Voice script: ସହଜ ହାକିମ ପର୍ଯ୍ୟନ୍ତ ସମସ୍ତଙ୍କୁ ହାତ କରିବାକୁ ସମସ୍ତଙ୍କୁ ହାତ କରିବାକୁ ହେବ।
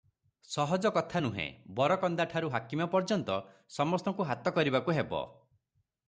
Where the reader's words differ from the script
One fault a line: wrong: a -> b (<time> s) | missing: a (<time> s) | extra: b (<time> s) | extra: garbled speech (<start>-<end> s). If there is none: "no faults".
wrong: ହାକିମ ପର୍ଯ୍ୟନ୍ତ ସମସ୍ତଙ୍କୁ ହାତ କରିବାକୁ -> କଥା ନୁହେଁ ବରକନ୍ଦାଠାରୁ ହାକିମ ପର୍ଯ୍ୟନ୍ତ (0.9 s)